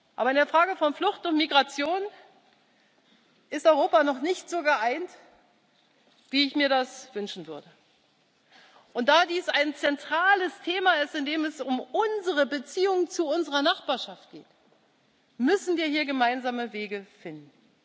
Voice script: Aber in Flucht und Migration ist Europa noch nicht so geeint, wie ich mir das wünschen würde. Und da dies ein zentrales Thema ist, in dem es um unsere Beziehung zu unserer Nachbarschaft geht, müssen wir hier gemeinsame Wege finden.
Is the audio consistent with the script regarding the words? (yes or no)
no